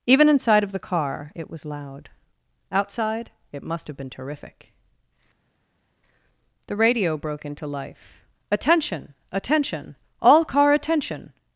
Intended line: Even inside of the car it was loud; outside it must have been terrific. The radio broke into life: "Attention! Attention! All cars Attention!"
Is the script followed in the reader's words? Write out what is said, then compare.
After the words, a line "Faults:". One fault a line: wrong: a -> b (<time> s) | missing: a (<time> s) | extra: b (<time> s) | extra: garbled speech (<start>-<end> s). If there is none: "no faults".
Even inside of the car it was loud; outside it must have been terrific. The radio broke into life: "Attention! Attention! All car Attention!"
Faults:
wrong: cars -> car (10.4 s)